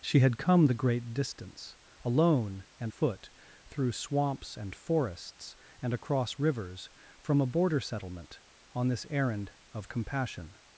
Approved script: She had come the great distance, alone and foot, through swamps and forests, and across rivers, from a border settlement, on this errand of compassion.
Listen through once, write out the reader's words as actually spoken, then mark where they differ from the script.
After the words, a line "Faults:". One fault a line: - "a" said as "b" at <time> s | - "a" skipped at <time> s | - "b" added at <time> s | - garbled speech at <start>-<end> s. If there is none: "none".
She had come the great distance, alone and foot, through swamps and forests, and across rivers, from a border settlement, on this errand of compassion.
Faults:
none